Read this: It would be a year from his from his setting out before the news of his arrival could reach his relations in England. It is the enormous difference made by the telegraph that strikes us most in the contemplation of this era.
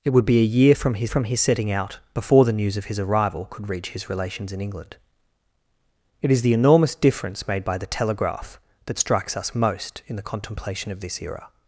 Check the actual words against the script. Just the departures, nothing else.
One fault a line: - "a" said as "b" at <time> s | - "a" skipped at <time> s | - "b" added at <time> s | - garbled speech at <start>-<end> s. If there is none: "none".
none